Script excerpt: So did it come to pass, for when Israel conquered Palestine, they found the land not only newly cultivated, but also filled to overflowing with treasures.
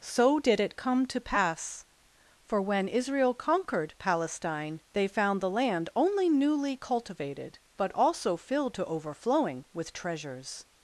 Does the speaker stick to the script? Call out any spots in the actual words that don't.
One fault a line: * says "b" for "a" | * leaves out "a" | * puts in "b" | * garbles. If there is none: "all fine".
* leaves out "not"